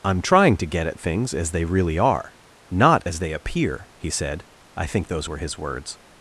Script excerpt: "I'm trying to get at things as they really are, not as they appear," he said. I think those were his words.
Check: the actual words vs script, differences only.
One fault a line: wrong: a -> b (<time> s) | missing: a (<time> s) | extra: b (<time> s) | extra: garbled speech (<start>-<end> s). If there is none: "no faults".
no faults